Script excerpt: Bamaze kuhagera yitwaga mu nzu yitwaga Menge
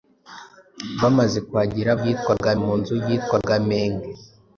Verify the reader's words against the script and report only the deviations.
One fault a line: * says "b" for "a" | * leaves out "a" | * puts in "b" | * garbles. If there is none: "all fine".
all fine